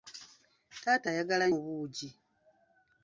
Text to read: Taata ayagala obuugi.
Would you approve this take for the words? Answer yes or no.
yes